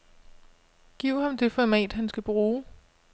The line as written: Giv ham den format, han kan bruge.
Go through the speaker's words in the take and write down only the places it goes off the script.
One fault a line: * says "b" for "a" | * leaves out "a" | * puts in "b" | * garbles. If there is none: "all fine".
* says "det" for "den"
* says "skal" for "kan"